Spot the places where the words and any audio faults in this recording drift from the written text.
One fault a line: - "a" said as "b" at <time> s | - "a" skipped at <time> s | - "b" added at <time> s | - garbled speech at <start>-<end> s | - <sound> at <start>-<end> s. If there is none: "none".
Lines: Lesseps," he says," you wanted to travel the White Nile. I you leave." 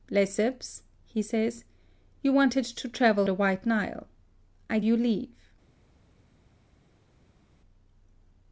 none